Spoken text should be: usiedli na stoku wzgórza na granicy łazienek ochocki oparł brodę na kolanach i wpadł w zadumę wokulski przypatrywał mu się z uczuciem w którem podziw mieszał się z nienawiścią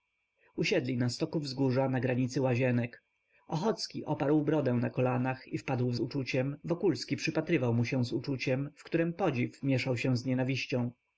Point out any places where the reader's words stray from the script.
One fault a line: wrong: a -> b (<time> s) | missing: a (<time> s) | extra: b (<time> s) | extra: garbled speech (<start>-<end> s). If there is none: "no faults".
wrong: zadumę -> uczuciem (6.0 s)